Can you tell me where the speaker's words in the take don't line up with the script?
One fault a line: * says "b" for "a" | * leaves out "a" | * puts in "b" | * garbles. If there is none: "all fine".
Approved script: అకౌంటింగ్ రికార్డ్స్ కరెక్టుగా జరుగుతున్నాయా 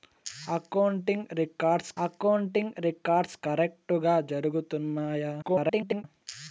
* puts in "అకౌంటింగ్ రికార్డ్స్"
* garbles